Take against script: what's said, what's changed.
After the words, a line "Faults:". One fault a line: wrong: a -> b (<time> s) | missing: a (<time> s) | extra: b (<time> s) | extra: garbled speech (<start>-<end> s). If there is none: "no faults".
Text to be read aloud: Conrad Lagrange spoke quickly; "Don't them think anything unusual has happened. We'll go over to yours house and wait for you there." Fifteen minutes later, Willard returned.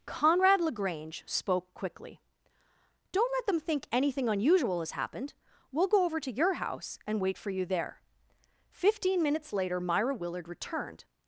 Conrad Lagrange spoke quickly; "Don't let them think anything unusual has happened. We'll go over to your house and wait for you there." Fifteen minutes later, Myra Willard returned.
Faults:
extra: let (3.3 s)
wrong: yours -> your (6.3 s)
extra: Myra (9.8 s)